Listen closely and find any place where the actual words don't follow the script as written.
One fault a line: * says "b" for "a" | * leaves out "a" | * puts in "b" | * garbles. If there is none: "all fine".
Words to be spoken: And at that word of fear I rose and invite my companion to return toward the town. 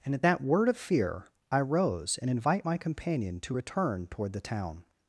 all fine